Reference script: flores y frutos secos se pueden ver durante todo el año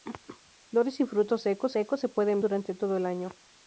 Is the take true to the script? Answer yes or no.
no